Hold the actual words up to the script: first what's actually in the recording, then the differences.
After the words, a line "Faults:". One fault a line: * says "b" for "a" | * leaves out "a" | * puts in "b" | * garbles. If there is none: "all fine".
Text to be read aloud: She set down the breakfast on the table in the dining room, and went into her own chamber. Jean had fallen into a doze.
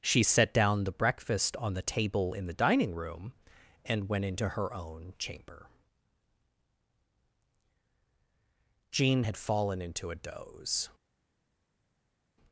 She set down the breakfast on the table in the dining room, and went into her own chamber. Jean had fallen into a doze.
Faults:
all fine